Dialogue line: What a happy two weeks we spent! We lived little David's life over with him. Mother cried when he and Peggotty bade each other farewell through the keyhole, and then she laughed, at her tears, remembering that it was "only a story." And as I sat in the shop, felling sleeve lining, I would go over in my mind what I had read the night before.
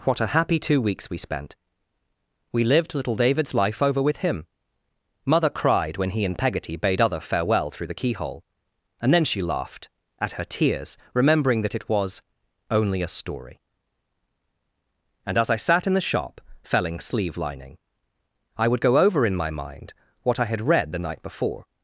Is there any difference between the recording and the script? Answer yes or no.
yes